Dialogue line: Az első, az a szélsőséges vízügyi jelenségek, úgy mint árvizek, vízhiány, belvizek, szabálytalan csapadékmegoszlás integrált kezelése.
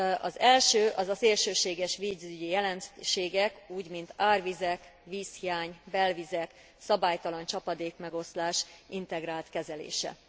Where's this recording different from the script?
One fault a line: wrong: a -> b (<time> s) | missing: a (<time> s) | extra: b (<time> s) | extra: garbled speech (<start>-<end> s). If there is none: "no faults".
no faults